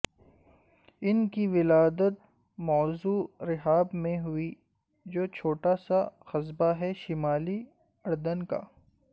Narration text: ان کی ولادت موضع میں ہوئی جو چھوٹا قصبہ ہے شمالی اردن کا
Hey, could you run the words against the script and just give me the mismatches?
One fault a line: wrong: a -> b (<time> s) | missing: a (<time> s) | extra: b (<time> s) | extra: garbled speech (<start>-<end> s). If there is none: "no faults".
extra: رحاب (3.5 s)
extra: سا (5.9 s)